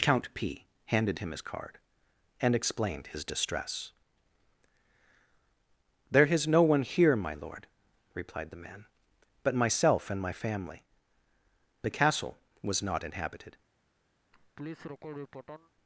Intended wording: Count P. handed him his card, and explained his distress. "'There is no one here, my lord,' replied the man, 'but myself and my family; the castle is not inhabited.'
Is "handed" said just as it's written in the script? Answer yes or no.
yes